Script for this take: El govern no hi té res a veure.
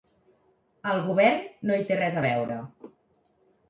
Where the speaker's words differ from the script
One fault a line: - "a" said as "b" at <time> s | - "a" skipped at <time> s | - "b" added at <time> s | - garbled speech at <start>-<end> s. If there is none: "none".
none